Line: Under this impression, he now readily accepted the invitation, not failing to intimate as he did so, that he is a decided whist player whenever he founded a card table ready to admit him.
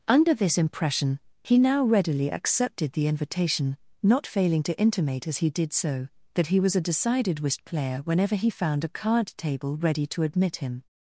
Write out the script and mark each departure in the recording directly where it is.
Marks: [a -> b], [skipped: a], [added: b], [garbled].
Under this impression, he now readily accepted the invitation, not failing to intimate as he did so, that he [is -> was] a decided whist player whenever he [founded -> found] a card table ready to admit him.